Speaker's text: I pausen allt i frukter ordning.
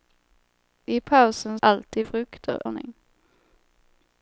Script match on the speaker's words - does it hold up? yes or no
yes